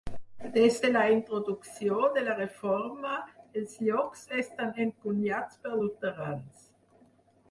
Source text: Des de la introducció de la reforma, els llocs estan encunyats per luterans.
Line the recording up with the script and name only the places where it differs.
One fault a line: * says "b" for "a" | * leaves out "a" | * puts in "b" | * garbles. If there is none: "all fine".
all fine